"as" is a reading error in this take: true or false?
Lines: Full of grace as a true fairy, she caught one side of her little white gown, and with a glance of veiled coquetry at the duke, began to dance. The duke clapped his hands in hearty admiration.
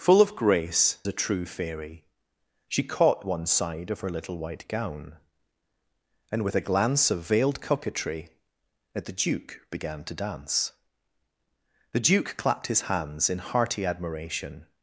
true